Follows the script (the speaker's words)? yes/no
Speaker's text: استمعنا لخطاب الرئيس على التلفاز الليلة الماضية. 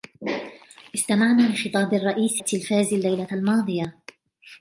no